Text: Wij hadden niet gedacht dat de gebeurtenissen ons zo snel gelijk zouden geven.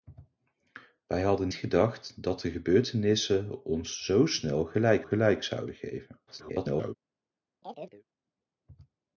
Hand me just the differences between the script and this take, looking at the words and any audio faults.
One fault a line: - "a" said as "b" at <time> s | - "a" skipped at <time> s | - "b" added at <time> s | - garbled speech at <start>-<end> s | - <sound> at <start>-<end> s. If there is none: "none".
- "niet" skipped at 1.5 s
- "gelijk" added at 5.0 s
- garbled speech at 6.3-6.9 s
- chirp at 7.6-8.0 s